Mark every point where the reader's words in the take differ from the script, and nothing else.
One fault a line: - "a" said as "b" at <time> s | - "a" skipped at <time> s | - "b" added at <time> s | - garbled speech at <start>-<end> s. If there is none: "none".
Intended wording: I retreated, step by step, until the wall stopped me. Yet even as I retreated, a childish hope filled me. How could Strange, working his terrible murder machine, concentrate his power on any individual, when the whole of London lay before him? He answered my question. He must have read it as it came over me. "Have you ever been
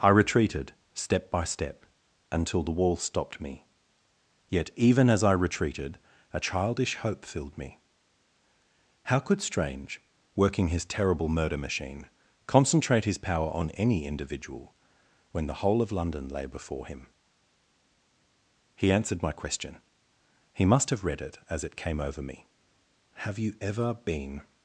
none